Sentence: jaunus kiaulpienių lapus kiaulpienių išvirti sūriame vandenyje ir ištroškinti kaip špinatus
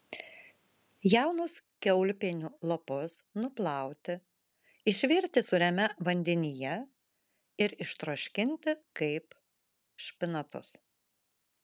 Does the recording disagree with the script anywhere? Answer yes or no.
yes